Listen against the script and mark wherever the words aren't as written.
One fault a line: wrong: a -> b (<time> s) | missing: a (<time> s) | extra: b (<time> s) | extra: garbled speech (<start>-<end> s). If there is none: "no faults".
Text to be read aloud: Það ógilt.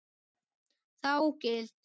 no faults